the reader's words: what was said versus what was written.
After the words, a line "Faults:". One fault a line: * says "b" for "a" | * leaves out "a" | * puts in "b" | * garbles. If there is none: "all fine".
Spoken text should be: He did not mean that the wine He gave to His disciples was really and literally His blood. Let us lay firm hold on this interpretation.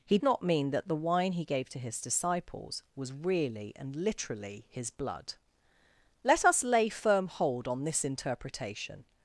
He not mean that the wine He gave to His disciples was really and literally His blood. Let us lay firm hold on this interpretation.
Faults:
* leaves out "did"